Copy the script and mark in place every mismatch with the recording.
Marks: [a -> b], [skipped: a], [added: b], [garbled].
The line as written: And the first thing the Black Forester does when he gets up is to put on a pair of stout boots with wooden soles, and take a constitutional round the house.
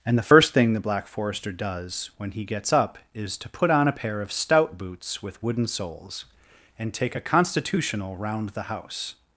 And the first thing the Black Forester does when he gets up is to put on a pair of stout boots with wooden soles, and take a constitutional round the house.